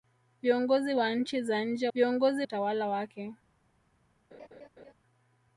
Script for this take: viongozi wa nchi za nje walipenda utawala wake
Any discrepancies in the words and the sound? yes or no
yes